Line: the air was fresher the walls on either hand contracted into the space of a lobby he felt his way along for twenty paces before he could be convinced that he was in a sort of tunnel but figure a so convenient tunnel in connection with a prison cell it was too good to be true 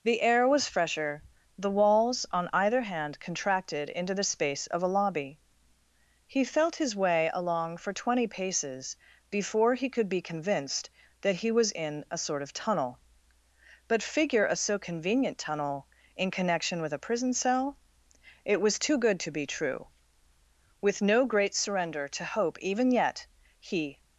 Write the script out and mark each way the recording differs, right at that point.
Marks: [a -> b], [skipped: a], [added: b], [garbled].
the air was fresher the walls on either hand contracted into the space of a lobby he felt his way along for twenty paces before he could be convinced that he was in a sort of tunnel but figure a so convenient tunnel in connection with a prison cell it was too good to be true [added: with no great surrender to hope even yet he]